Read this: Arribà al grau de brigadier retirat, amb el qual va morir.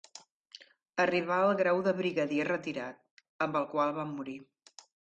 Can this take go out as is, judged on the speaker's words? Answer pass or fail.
pass